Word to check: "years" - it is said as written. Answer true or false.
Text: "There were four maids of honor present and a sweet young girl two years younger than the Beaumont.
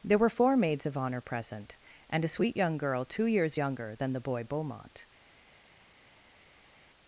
true